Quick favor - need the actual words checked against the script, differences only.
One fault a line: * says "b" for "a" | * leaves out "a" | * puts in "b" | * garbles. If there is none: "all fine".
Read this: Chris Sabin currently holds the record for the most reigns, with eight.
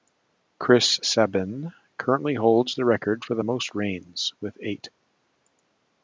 all fine